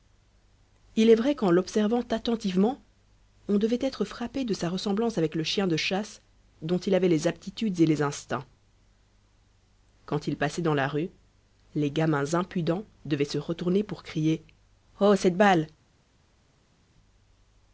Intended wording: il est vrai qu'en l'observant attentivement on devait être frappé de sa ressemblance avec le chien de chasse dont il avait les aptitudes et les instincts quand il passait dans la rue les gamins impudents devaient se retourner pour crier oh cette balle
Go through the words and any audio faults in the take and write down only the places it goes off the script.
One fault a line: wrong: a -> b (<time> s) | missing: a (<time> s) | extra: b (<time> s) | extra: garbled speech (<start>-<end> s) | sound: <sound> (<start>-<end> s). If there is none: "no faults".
no faults